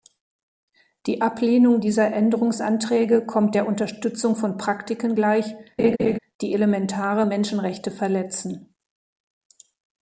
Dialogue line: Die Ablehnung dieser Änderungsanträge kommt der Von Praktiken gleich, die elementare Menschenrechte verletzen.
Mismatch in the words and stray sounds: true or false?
true